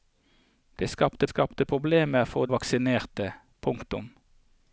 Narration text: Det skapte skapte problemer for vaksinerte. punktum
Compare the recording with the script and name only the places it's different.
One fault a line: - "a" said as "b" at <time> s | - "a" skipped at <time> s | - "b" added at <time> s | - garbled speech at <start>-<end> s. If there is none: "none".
none